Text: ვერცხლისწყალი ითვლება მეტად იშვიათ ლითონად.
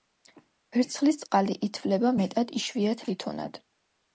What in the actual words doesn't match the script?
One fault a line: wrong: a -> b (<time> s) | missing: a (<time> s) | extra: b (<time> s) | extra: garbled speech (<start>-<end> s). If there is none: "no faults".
no faults